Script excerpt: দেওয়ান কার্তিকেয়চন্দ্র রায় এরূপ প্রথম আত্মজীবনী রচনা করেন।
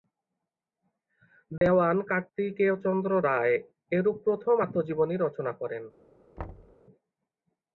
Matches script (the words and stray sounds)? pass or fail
fail